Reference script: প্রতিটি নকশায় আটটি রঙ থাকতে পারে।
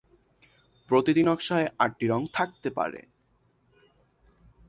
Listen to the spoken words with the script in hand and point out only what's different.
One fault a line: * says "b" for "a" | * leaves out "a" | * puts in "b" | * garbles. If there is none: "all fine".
all fine